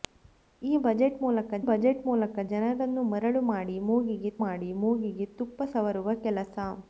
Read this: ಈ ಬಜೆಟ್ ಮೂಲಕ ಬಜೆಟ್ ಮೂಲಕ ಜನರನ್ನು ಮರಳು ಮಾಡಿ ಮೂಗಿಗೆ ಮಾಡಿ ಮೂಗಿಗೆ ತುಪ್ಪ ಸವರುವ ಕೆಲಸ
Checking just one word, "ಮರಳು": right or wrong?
right